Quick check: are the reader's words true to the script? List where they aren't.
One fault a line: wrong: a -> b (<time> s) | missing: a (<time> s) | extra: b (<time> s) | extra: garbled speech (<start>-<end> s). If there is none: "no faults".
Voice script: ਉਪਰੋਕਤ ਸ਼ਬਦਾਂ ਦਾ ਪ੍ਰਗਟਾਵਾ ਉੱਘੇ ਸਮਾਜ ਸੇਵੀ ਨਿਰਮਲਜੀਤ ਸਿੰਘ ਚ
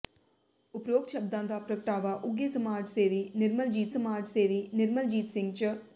extra: ਸਮਾਜ ਸੇਵੀ ਨਿਰਮਲਜੀਤ (3.9 s)